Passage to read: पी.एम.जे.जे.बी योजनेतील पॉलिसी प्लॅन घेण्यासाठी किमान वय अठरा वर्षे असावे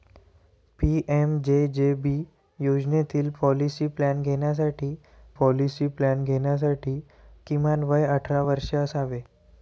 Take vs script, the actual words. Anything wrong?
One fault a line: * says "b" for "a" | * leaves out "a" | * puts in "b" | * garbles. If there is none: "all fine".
* puts in "पॉलिसी प्लॅन घेण्यासाठी"